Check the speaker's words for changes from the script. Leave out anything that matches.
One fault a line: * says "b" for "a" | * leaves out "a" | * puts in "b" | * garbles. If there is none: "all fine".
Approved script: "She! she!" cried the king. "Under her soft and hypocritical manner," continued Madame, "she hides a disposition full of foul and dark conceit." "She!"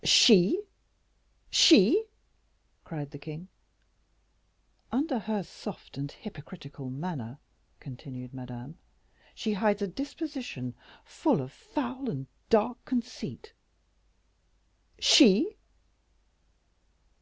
all fine